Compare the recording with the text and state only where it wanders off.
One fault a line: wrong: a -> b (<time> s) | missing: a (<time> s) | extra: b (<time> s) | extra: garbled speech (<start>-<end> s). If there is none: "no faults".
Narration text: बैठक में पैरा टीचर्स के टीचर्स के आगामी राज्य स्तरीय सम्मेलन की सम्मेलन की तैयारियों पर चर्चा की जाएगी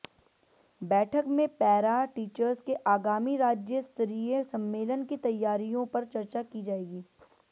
missing: टीचर्स के (2.7 s)
missing: सम्मेलन की (5.2 s)